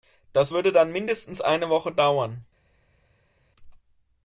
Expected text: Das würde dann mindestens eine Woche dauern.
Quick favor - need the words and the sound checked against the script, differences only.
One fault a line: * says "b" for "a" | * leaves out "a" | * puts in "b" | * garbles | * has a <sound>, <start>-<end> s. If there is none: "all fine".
all fine